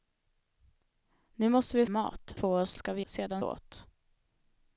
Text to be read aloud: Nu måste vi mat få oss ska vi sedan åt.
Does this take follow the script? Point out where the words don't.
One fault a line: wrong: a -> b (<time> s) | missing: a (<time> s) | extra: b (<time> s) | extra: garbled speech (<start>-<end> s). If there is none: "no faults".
no faults